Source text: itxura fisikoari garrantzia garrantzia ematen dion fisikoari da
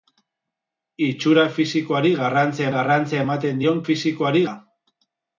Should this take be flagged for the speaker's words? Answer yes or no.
no